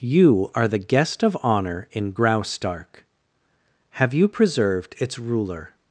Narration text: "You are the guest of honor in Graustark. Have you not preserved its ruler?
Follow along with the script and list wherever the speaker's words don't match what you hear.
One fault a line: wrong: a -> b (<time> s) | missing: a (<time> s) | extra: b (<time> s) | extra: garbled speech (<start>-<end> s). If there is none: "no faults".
missing: not (4.3 s)